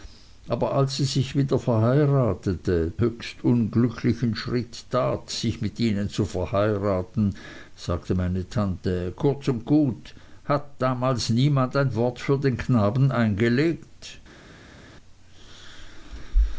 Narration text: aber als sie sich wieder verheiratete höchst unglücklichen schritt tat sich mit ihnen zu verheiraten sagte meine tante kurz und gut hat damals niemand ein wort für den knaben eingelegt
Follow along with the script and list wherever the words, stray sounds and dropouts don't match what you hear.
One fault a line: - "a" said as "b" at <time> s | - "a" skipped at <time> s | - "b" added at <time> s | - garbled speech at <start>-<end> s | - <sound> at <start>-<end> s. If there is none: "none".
none